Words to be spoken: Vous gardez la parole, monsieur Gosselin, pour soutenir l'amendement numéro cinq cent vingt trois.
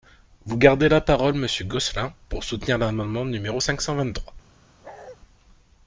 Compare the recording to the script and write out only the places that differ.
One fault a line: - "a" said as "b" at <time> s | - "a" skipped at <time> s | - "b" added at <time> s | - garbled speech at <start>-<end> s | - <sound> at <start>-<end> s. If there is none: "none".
- bark at 4.8-5.2 s